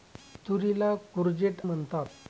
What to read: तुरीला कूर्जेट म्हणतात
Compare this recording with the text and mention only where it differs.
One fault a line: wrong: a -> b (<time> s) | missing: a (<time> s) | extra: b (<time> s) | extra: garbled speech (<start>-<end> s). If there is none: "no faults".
no faults